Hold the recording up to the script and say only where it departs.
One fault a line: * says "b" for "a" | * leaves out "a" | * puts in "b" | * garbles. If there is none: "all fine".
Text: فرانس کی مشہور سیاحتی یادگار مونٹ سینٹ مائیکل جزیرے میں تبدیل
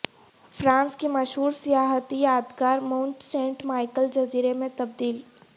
all fine